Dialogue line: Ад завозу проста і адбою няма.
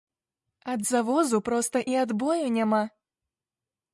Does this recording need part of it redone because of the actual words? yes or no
no